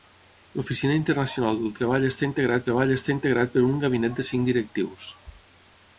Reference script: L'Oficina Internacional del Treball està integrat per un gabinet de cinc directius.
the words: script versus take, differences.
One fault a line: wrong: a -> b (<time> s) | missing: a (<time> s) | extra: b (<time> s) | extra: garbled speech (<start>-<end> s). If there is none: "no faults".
extra: Treball està integrat (2.7 s)